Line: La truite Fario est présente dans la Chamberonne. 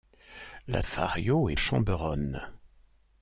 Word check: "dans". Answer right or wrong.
wrong